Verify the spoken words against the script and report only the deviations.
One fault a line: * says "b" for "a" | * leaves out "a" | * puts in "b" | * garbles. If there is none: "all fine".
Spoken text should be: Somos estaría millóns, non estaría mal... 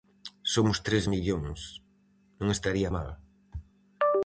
* says "tres" for "estaría"